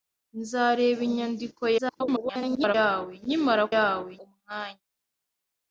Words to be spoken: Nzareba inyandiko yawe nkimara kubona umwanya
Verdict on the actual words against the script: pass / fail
fail